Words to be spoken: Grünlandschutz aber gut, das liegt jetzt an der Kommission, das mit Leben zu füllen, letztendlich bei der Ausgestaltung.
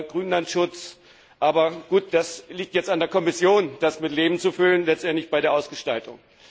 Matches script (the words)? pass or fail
pass